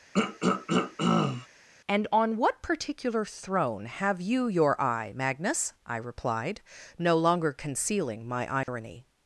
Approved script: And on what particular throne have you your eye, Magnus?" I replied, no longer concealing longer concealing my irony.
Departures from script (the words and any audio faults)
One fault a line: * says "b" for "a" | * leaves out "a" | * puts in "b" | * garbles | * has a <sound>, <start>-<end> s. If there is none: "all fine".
* has a throat clearing, 0.1-1.5 s
* leaves out "longer concealing"
* has a dropout, 8.6-8.7 s